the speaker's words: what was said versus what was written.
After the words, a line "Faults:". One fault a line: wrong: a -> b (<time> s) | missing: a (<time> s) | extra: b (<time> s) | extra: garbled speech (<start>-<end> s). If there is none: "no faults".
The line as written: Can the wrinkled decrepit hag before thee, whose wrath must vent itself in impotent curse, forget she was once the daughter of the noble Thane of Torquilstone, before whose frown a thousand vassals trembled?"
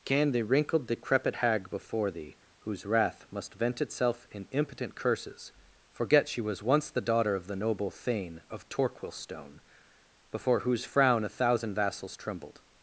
Can the wrinkled decrepit hag before thee, whose wrath must vent itself in impotent curses, forget she was once the daughter of the noble Thane of Torquilstone, before whose frown a thousand vassals trembled?"
Faults:
wrong: curse -> curses (4.9 s)